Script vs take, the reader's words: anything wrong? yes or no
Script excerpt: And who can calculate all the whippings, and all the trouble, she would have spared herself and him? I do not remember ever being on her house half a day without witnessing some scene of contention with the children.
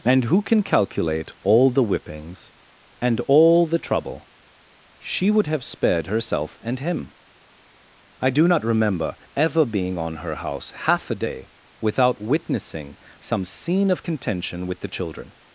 no